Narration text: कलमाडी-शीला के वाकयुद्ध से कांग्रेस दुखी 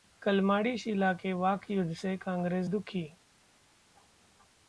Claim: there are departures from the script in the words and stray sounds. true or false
false